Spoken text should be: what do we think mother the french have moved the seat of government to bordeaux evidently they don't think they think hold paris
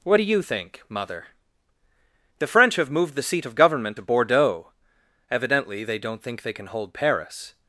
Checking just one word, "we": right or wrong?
wrong